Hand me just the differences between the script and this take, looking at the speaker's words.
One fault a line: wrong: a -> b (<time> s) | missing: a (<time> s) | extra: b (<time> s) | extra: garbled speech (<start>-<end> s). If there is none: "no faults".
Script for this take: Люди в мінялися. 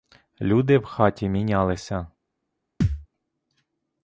extra: хаті (0.8 s)